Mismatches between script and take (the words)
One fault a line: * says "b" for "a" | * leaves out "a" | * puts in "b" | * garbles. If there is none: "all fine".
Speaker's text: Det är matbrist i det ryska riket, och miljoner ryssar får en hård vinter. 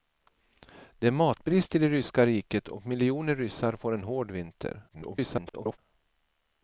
* garbles